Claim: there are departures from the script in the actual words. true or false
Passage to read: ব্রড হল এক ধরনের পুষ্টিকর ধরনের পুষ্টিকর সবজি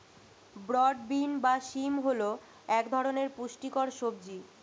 true